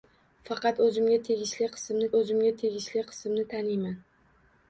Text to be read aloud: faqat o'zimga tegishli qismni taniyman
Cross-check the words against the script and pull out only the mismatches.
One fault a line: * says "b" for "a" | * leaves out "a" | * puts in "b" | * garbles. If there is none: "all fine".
* puts in "o'zimga tegishli qismni"